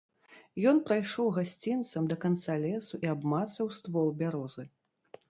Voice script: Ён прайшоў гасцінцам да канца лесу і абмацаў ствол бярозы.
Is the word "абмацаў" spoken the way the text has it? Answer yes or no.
yes